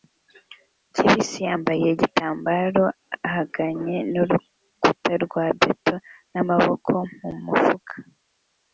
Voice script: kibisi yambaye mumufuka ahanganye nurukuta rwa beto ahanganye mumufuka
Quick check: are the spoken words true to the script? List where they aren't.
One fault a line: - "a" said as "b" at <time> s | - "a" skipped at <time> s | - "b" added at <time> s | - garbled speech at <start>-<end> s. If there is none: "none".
- "mumufuka" said as "igitambaro" at 1.9 s
- "ahanganye" said as "n'amaboko" at 6.3 s